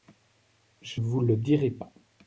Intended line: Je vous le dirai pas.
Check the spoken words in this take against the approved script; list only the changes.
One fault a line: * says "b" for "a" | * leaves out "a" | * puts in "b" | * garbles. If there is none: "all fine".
all fine